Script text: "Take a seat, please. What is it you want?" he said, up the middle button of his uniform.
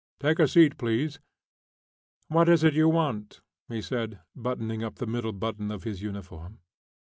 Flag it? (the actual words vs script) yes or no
yes